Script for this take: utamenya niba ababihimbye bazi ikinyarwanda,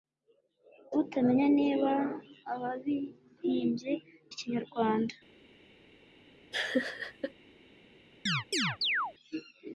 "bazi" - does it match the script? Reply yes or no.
no